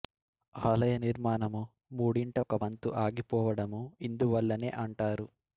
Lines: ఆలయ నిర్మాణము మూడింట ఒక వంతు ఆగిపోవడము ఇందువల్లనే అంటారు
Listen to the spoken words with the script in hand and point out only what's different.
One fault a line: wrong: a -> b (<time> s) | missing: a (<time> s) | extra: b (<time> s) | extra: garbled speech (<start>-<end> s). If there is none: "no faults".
no faults